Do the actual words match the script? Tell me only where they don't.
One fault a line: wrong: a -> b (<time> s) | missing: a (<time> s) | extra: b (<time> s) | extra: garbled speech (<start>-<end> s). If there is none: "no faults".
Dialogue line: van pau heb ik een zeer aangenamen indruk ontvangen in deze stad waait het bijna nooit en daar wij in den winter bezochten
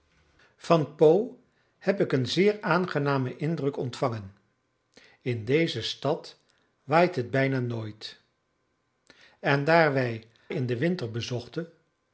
no faults